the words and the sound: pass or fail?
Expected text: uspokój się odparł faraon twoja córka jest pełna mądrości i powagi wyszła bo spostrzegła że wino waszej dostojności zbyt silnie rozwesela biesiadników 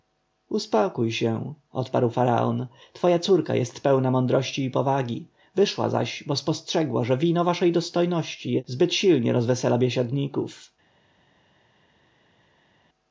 fail